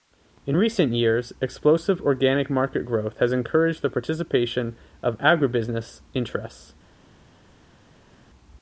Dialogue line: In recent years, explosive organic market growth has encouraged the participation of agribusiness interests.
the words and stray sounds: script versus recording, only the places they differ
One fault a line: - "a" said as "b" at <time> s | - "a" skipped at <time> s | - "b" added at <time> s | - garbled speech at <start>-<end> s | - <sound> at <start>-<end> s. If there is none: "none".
none